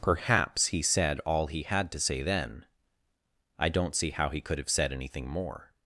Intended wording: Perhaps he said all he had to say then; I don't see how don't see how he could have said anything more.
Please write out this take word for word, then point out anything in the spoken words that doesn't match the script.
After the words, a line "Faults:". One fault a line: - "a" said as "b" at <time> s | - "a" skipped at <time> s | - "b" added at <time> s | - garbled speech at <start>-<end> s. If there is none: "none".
Perhaps he said all he had to say then; I don't see how he could have said anything more.
Faults:
- "don't see how" skipped at 4.3 s